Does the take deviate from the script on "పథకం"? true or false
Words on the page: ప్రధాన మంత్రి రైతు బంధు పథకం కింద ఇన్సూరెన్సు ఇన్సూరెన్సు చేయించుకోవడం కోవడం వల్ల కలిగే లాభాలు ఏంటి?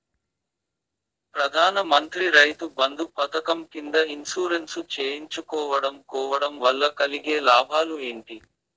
false